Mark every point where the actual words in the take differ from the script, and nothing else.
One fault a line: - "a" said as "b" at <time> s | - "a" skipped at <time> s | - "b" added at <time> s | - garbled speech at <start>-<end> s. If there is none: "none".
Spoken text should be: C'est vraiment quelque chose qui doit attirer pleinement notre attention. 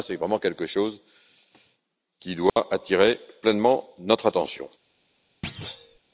none